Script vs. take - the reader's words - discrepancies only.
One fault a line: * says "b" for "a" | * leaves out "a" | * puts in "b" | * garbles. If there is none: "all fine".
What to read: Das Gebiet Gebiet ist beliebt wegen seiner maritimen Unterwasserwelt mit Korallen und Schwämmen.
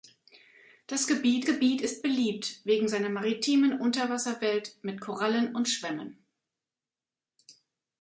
all fine